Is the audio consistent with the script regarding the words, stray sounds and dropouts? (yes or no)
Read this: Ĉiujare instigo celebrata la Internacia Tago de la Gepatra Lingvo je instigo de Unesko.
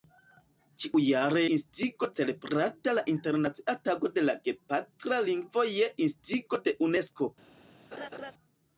no